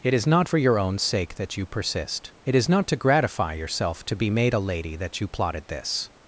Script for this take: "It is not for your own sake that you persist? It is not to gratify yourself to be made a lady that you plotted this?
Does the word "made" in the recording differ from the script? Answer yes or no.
no